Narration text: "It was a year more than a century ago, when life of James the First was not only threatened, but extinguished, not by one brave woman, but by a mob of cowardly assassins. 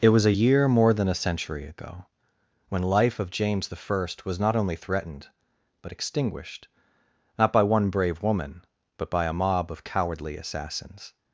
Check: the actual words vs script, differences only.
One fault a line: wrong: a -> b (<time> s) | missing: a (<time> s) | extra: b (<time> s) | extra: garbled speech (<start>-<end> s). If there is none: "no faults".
no faults